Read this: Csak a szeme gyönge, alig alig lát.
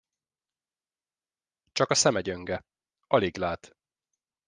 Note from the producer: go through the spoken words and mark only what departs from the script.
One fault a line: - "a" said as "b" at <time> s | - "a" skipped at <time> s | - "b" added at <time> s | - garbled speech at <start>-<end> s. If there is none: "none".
- "alig" skipped at 3.4 s